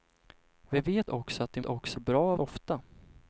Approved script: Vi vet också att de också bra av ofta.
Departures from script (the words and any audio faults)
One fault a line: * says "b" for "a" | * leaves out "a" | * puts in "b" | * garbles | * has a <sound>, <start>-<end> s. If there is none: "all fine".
all fine